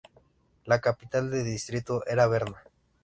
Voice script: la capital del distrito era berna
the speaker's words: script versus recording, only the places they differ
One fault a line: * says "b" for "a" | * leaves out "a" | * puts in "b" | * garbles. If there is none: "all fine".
all fine